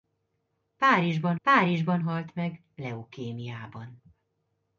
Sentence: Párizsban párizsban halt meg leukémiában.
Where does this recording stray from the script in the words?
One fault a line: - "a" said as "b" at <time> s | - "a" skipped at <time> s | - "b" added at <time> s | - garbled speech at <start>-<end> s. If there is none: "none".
none